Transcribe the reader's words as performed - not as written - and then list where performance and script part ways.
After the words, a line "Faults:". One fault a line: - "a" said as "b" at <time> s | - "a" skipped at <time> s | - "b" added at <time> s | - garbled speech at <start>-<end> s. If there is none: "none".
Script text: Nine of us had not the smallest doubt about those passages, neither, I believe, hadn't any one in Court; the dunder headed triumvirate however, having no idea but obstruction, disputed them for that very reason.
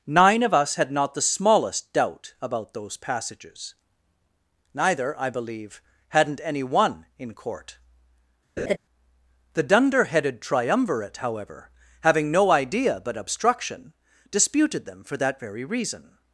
Nine of us had not the smallest doubt about those passages, neither, I believe, hadn't any one in Court; the dunder headed triumvirate however, having no idea but obstruction, disputed them for that very reason.
Faults:
none